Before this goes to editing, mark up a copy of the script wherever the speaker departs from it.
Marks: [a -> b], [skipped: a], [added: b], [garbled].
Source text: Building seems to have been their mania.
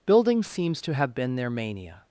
Building seems to have been their mania.